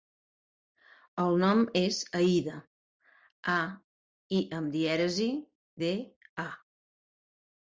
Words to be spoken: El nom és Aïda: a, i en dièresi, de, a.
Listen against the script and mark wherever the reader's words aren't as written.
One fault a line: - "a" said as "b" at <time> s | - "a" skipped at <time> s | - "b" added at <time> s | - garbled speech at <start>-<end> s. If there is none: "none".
- "en" said as "amb" at 4.6 s